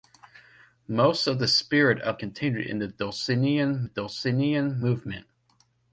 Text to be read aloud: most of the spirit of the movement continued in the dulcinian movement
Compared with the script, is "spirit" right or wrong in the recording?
right